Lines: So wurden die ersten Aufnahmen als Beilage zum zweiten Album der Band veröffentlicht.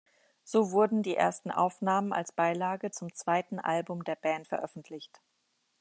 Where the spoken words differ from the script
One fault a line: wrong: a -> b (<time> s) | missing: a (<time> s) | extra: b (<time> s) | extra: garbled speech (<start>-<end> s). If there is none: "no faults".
no faults